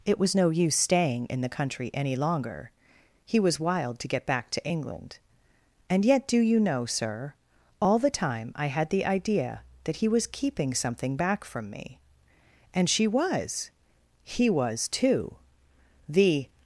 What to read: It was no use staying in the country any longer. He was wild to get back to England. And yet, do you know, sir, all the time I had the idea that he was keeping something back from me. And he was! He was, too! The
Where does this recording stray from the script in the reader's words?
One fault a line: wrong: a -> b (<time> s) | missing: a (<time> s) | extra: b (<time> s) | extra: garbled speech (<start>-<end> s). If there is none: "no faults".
wrong: he -> she (12.9 s)